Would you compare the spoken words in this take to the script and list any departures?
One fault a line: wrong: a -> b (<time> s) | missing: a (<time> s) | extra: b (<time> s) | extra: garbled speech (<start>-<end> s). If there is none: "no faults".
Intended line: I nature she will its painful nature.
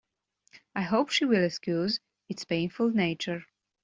wrong: nature -> hope (0.8 s)
extra: excuse (1.4 s)